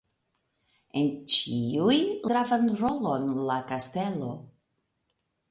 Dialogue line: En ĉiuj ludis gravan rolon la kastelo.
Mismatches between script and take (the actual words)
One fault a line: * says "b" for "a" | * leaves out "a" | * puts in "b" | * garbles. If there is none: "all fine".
* leaves out "ludis"